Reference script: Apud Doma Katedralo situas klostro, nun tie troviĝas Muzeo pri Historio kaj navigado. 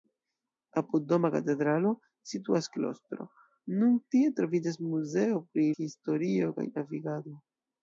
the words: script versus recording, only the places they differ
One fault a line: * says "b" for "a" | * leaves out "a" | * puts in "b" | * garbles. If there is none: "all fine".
all fine